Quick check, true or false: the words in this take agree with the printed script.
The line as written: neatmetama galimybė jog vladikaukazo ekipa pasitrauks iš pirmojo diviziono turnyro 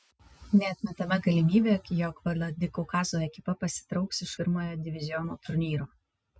true